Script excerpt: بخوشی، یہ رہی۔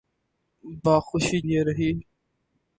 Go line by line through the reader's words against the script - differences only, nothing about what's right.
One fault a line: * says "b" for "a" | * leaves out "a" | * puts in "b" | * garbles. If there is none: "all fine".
all fine